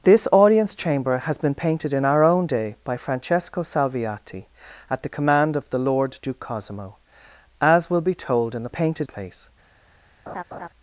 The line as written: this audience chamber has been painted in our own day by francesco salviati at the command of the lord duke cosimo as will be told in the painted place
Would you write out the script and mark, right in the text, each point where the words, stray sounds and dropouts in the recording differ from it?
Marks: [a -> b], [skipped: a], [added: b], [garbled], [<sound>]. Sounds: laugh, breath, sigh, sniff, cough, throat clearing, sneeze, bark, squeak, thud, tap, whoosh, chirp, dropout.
this audience chamber has been painted in our own day by francesco salviati at the command of the lord duke cosimo as will be told in the painted place [laugh]